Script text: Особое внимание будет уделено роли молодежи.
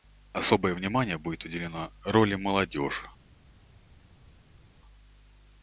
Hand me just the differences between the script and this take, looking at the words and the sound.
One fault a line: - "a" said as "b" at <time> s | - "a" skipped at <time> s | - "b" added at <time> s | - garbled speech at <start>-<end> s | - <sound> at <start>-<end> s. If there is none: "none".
none